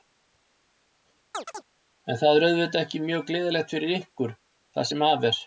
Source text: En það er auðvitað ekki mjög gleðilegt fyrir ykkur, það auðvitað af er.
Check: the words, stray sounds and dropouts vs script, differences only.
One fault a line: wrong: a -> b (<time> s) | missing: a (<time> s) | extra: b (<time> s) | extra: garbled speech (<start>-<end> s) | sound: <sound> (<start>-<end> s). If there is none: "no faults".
sound: chirp (1.3-1.7 s)
wrong: auðvitað -> sem (4.9 s)